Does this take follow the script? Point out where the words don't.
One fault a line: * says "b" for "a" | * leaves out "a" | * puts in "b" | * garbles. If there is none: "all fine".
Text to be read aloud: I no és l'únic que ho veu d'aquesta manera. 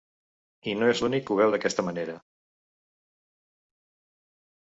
all fine